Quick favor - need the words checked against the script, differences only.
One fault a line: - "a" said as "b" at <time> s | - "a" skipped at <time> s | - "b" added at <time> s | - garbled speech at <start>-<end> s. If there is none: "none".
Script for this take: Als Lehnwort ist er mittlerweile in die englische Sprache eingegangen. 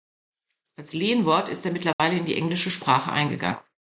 none